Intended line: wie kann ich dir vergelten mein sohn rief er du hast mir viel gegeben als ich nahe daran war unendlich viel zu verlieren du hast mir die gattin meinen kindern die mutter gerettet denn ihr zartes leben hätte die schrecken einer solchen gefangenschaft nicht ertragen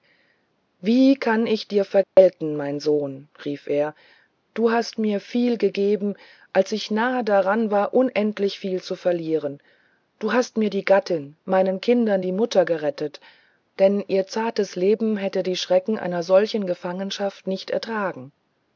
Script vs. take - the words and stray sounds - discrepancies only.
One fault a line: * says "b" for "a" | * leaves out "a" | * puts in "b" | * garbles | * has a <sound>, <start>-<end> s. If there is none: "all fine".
* has a dropout, 2.0-2.2 s